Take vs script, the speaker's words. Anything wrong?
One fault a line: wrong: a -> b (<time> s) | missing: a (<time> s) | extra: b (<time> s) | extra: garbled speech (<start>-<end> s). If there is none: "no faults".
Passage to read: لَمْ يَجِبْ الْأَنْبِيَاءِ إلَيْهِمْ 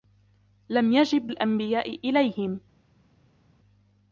no faults